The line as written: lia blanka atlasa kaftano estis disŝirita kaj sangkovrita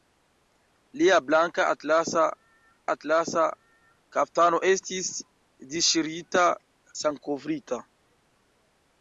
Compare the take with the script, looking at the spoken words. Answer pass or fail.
fail